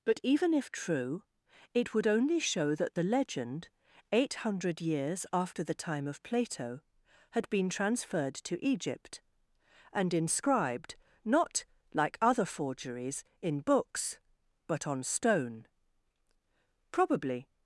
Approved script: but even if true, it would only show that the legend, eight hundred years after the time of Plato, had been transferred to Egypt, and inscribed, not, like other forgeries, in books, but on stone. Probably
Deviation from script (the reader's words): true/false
false